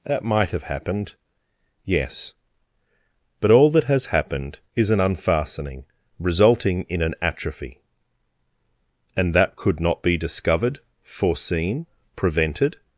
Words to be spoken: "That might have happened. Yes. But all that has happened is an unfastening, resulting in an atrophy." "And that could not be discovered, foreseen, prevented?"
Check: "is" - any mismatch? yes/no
no